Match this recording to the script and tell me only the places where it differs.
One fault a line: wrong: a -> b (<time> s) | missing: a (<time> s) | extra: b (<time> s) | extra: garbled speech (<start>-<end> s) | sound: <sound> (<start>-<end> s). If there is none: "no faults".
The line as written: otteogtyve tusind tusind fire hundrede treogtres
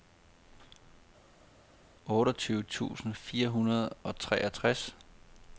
missing: tusind (3.1 s)
extra: og (4.0 s)